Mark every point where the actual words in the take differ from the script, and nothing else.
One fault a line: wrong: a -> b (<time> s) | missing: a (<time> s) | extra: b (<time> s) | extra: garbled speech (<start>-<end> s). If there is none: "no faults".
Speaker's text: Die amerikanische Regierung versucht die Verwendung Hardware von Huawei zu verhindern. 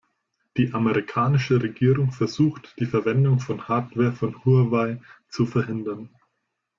extra: von (3.4 s)